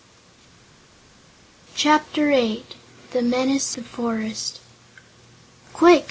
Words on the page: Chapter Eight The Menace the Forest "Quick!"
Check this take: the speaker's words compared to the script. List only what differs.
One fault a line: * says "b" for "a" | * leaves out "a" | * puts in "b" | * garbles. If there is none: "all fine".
all fine